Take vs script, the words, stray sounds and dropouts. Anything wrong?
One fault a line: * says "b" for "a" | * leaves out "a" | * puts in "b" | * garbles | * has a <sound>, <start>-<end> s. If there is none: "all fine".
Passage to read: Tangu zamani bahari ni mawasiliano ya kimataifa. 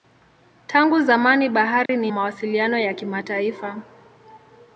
* has a dropout, 1.9-1.9 s